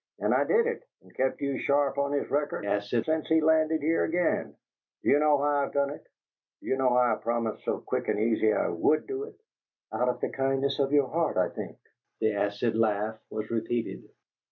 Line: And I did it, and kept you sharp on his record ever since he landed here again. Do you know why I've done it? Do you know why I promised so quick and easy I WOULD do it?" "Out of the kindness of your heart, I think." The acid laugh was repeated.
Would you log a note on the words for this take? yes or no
yes